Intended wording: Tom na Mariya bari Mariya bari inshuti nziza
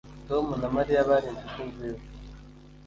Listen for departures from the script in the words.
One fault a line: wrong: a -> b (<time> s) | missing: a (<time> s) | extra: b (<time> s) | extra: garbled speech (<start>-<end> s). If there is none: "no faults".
missing: Mariya bari (1.3 s)